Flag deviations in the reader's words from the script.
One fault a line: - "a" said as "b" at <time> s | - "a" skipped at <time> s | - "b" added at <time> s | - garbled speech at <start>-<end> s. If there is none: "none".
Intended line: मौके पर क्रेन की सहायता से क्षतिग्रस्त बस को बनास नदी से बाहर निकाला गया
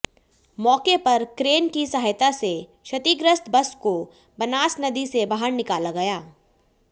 none